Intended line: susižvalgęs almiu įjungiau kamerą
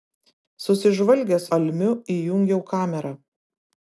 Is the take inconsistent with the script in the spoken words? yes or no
no